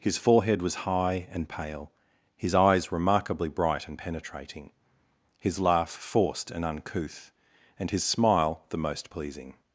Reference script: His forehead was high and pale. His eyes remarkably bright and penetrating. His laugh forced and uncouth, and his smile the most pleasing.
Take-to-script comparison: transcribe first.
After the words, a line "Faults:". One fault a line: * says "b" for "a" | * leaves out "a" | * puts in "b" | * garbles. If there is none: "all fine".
His forehead was high and pale. His eyes remarkably bright and penetrating. His laugh forced and uncouth, and his smile the most pleasing.
Faults:
all fine